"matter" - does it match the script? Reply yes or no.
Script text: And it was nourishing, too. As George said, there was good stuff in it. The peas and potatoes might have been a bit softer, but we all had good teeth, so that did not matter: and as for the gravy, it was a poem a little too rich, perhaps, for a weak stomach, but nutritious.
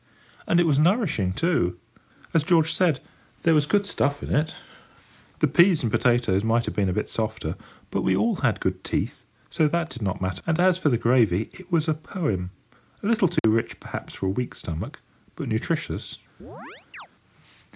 yes